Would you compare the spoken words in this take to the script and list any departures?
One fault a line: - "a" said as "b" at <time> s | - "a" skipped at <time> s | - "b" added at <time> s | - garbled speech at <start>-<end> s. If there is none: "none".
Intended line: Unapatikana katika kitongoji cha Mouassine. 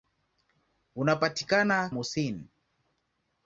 - "katika kitongoji cha" skipped at 1.9 s